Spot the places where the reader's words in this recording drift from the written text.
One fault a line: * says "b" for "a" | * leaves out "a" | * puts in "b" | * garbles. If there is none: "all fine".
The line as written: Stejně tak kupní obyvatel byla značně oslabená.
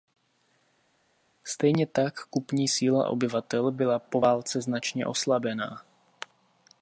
* puts in "síla"
* puts in "po válce"